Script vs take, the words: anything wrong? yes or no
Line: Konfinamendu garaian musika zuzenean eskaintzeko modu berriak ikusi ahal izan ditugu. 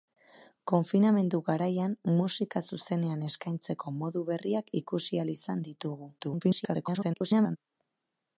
yes